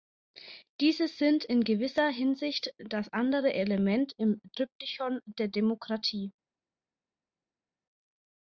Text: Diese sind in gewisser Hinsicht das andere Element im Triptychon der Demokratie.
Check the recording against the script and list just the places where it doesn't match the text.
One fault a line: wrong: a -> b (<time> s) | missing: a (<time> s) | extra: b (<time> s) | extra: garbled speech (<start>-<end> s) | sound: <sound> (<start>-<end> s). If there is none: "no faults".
no faults